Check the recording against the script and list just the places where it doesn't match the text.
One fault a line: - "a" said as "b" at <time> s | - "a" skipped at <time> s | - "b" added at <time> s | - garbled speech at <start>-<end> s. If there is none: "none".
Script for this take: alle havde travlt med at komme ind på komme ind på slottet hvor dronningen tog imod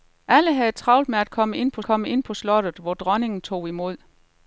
none